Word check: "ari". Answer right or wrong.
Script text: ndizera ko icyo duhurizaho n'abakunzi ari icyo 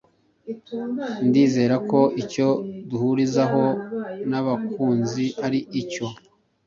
right